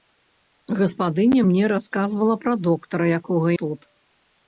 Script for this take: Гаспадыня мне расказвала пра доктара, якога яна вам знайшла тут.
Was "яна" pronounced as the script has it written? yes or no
no